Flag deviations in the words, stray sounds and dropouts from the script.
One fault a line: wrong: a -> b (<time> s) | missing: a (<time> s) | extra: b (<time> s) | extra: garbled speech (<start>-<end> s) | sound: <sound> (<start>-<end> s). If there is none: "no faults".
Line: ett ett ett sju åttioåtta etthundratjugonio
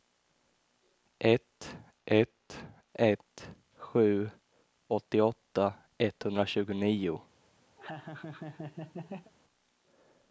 sound: laugh (7.8-9.3 s)